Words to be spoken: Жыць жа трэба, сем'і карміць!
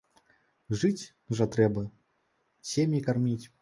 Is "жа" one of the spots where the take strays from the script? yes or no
no